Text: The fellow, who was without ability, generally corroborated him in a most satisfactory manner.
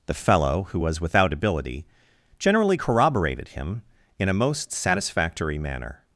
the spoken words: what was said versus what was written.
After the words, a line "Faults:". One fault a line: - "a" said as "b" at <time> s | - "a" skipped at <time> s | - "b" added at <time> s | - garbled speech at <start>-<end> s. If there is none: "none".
The fellow, who was without ability, generally corroborated him in a most satisfactory manner.
Faults:
none